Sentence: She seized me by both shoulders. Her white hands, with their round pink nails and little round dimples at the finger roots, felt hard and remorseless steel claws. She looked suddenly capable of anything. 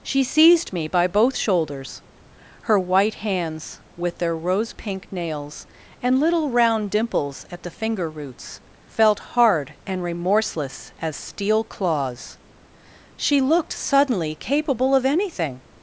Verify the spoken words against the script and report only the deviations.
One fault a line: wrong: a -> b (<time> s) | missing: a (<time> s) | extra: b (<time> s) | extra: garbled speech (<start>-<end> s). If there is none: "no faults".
wrong: round -> rose (4.3 s)
extra: as (11.0 s)